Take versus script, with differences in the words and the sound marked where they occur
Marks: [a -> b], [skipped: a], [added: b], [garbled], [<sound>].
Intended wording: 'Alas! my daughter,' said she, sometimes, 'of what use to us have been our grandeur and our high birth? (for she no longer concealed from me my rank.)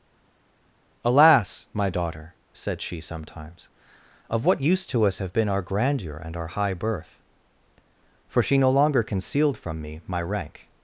'Alas! my daughter,' said she, sometimes, 'of what use to us have been our grandeur and our high birth? (for she no longer concealed from me my rank.)